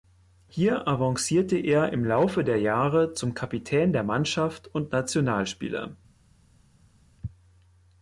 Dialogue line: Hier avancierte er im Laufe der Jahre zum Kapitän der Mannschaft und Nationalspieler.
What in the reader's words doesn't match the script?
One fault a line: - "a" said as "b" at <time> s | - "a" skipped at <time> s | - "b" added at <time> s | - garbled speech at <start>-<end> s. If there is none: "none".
none